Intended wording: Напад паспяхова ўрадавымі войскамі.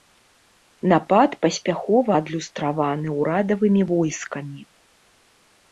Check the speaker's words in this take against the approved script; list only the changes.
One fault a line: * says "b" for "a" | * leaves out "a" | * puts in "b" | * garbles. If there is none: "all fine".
* puts in "адлюстраваны"